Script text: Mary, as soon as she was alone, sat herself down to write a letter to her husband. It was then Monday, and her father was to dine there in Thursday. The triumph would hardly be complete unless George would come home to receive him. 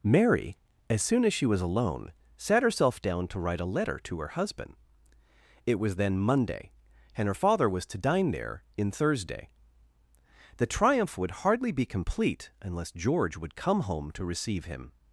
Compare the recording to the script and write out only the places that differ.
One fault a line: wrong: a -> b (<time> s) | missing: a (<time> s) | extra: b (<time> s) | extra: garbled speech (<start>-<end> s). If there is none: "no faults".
no faults